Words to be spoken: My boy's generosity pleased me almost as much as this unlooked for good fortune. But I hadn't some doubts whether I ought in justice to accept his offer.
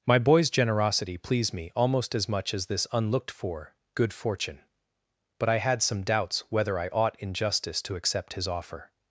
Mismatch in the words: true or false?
true